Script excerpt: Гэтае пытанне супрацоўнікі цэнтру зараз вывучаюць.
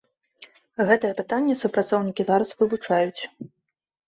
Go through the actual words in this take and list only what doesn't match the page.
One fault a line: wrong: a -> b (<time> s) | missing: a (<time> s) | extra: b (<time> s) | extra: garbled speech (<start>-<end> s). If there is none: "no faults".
missing: цэнтру (2.3 s)